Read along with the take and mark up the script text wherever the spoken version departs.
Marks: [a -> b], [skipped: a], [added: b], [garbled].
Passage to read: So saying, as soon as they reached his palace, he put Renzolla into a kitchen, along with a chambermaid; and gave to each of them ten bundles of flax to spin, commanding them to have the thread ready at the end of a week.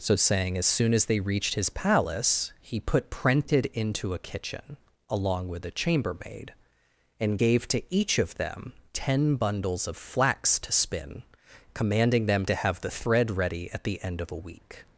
So saying, as soon as they reached his palace, he put [Renzolla -> Prented] into a kitchen, along with a chambermaid; and gave to each of them ten bundles of flax to spin, commanding them to have the thread ready at the end of a week.